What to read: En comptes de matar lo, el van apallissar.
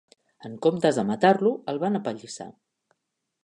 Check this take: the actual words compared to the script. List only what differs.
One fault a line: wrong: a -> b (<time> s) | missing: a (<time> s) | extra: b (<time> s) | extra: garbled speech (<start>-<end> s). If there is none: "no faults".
no faults